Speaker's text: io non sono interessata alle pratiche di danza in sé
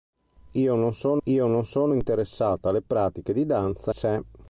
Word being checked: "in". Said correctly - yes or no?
no